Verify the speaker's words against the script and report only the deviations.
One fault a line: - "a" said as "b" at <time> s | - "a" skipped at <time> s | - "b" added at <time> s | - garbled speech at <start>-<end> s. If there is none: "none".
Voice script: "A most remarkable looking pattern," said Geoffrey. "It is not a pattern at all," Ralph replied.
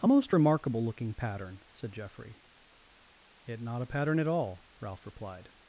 - "is" skipped at 3.6 s